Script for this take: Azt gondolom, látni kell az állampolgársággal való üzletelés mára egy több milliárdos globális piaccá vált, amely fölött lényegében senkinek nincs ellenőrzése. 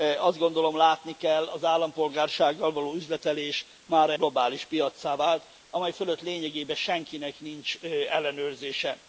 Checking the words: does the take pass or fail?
fail